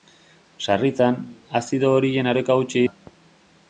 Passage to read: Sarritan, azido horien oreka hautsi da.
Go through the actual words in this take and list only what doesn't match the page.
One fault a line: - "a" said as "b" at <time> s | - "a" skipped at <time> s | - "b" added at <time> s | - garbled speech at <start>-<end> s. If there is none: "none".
none